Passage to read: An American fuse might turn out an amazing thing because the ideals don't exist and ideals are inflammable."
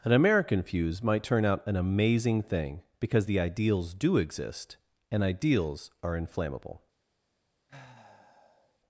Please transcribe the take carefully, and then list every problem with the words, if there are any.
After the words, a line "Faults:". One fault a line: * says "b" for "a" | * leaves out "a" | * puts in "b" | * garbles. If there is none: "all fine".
An American fuse might turn out an amazing thing because the ideals do exist and ideals are inflammable."
Faults:
* says "do" for "don't"